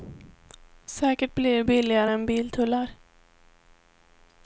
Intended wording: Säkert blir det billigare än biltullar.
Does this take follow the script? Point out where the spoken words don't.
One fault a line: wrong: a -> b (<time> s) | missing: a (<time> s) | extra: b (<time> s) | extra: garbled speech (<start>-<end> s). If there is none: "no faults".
no faults